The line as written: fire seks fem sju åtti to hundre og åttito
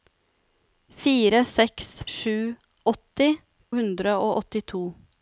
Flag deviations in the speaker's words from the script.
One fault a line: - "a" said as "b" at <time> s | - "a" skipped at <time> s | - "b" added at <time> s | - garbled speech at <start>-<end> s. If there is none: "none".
- "fem" skipped at 1.9 s
- "to" skipped at 3.3 s